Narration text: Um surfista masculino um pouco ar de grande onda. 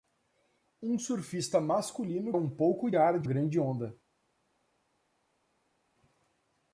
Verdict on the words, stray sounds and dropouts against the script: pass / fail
pass